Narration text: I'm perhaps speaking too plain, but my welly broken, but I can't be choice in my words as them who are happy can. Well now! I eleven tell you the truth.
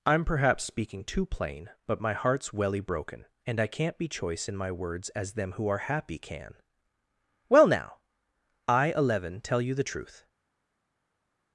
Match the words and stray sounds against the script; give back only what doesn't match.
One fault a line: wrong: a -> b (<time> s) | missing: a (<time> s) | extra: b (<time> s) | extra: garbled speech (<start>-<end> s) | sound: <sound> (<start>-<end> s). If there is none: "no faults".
extra: heart's (2.1 s)
wrong: but -> and (3.5 s)